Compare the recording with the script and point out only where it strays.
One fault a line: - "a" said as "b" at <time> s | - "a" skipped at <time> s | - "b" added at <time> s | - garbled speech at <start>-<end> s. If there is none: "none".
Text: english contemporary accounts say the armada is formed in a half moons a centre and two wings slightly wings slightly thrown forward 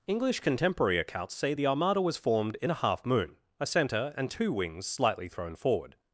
- "is" said as "was" at 2.0 s
- "moons" said as "moon" at 3.0 s
- "wings slightly" skipped at 5.3 s